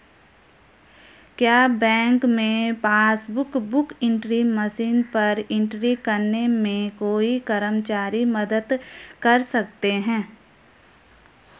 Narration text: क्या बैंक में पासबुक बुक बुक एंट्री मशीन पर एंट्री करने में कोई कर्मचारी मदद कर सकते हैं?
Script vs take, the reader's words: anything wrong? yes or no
yes